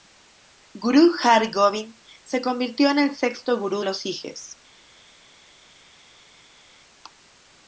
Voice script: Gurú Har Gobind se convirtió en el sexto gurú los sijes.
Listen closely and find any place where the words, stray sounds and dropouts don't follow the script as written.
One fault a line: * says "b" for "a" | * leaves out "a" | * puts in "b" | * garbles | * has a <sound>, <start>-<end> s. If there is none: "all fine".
all fine